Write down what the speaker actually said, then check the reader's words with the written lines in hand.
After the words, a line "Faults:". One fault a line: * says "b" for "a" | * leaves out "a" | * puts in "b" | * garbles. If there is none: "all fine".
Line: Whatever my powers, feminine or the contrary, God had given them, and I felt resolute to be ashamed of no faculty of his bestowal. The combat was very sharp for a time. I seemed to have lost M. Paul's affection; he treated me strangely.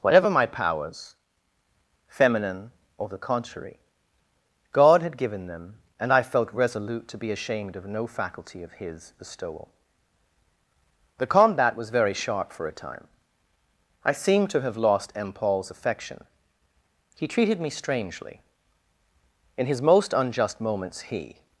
Whatever my powers, feminine or the contrary, God had given them, and I felt resolute to be ashamed of no faculty of his bestowal. The combat was very sharp for a time. I seemed to have lost M. Paul's affection; he treated me strangely. In his most unjust moments he
Faults:
* puts in "In his most unjust moments he"